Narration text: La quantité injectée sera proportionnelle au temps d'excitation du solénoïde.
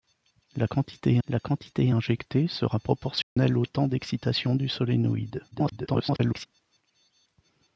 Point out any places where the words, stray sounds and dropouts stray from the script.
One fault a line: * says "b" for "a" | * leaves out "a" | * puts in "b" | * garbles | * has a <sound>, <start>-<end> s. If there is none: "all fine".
* puts in "la quantité"
* has a dropout, 3.2-3.4 s
* garbles